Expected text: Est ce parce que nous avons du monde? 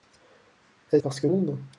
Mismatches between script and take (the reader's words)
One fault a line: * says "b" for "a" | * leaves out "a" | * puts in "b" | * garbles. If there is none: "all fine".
* leaves out "ce"
* leaves out "nous avons du"